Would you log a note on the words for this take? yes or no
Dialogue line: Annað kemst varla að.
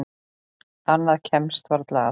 no